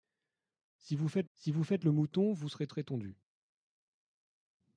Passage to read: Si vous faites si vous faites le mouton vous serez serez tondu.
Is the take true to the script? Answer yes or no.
yes